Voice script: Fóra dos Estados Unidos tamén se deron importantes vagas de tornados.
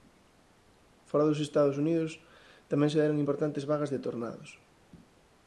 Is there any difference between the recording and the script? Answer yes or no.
no